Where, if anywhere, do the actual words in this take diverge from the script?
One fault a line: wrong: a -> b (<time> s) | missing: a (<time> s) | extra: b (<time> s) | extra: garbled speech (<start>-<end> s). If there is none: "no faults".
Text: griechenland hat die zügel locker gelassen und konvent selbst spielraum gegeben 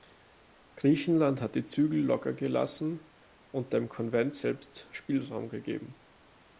extra: dem (3.7 s)